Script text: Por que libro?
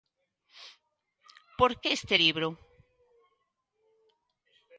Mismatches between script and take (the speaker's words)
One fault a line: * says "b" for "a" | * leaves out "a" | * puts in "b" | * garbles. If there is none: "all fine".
* puts in "este"